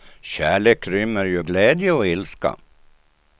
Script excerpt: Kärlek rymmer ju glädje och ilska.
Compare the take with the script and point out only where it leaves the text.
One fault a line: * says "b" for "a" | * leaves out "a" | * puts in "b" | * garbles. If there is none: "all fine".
all fine